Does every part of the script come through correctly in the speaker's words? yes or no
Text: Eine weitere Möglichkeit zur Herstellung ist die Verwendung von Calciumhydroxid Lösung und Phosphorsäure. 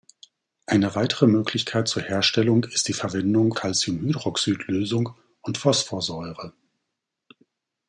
no